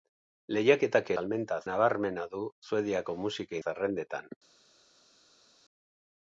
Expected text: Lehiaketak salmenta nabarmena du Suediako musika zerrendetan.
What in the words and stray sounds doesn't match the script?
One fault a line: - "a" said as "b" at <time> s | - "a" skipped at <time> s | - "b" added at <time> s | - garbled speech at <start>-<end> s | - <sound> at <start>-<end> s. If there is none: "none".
none